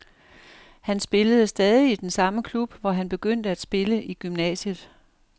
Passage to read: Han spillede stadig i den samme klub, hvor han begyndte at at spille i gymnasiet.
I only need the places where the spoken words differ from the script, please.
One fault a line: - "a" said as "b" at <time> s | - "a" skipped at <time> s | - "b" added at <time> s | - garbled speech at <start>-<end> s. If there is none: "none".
- "at" skipped at 3.6 s